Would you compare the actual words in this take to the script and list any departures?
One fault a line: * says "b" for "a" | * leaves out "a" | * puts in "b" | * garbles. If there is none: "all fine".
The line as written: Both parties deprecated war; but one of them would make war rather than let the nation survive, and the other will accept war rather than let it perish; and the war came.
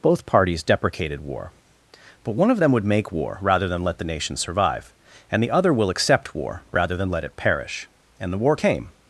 all fine